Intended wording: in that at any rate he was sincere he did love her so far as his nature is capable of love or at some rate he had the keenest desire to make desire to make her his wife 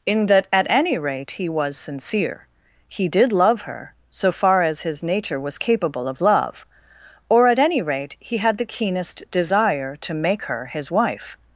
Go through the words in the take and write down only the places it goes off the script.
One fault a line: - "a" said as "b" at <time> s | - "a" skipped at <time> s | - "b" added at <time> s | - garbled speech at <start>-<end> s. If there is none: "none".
- "is" said as "was" at 5.4 s
- "some" said as "any" at 7.6 s
- "desire to make" skipped at 10.4 s